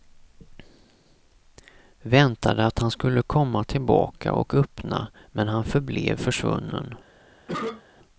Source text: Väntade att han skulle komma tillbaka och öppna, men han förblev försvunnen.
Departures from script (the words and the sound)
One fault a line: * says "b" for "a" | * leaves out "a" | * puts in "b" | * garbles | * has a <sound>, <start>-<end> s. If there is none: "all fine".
* has a cough, 7.5-7.8 s